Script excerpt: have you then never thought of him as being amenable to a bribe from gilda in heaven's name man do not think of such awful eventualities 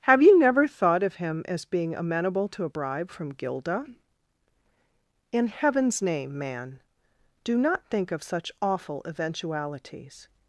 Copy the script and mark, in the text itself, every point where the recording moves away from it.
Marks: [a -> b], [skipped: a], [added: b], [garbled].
have you [skipped: then] never thought of him as being amenable to a bribe from gilda in heaven's name man do not think of such awful eventualities